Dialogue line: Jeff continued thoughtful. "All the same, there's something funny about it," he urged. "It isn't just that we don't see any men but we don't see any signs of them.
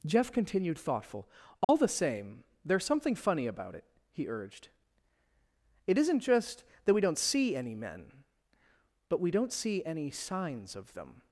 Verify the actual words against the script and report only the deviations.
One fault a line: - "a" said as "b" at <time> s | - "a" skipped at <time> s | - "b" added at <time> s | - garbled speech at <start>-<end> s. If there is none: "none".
none